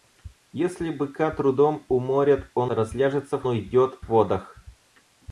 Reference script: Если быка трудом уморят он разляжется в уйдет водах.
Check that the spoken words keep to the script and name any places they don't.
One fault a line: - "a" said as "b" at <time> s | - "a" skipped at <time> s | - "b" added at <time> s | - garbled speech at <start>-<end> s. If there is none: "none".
none